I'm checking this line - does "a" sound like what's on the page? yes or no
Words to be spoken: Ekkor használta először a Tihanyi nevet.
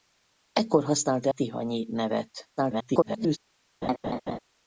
no